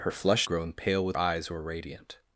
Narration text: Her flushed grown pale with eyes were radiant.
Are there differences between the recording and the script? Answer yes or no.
no